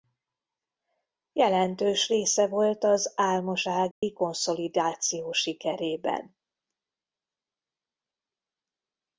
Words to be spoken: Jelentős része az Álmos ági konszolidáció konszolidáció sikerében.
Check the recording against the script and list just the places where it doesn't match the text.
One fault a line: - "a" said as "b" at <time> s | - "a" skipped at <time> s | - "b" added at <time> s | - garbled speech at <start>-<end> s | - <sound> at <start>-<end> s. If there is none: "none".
- "volt" added at 2.5 s
- dropout at 3.9-4.0 s
- "konszolidáció" skipped at 5.3 s